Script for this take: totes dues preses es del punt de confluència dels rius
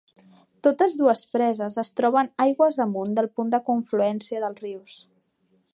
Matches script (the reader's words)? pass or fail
fail